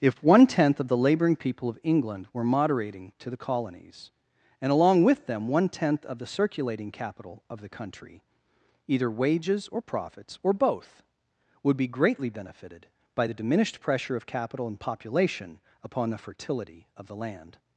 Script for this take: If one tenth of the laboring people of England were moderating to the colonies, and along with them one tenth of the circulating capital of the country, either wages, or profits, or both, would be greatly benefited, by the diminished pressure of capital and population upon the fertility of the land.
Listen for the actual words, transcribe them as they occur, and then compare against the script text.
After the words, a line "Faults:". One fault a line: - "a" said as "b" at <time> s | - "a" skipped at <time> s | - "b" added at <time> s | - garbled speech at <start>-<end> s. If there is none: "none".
If one tenth of the laboring people of England were moderating to the colonies, and along with them one tenth of the circulating capital of the country, either wages, or profits, or both, would be greatly benefited, by the diminished pressure of capital and population upon the fertility of the land.
Faults:
none